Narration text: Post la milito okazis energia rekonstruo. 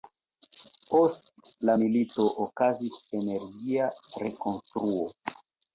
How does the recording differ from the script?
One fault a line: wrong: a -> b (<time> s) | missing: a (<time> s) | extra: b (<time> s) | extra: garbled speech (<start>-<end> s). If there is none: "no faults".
no faults